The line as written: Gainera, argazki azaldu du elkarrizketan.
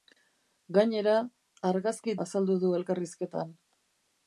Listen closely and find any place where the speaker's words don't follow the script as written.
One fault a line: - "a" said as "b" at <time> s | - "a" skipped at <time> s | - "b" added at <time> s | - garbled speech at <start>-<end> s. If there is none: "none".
none